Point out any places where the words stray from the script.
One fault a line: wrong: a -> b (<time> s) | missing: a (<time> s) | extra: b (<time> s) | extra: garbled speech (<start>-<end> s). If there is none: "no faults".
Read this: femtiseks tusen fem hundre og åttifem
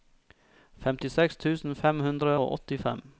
no faults